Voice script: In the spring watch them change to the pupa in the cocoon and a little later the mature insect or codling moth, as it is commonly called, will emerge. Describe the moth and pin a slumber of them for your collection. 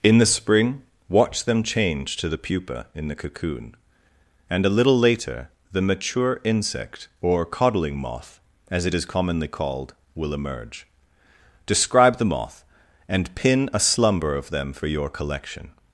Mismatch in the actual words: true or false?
false